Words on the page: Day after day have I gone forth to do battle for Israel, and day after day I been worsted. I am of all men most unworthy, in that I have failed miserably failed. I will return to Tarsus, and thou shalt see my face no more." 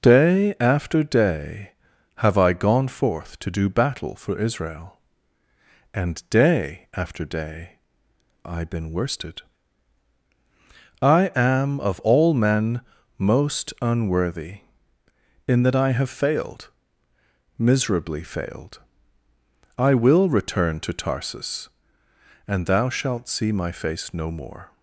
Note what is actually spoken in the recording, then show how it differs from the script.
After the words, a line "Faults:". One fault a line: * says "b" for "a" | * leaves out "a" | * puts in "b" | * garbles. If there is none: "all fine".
Day after day have I gone forth to do battle for Israel, and day after day I been worsted. I am of all men most unworthy, in that I have failed miserably failed. I will return to Tarsus, and thou shalt see my face no more."
Faults:
all fine